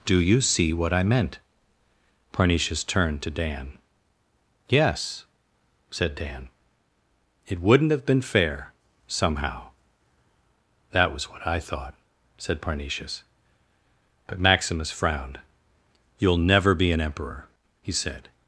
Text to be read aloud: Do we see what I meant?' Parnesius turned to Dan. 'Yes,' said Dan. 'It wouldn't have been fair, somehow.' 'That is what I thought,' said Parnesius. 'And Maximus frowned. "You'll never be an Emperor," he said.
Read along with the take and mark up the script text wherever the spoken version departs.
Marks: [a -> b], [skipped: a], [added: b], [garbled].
Do [we -> you] see what I meant?' Parnesius turned to Dan. 'Yes,' said Dan. 'It wouldn't have been fair, somehow.' 'That [is -> was] what I thought,' said Parnesius. ['And -> But] Maximus frowned. "You'll never be an Emperor," he said.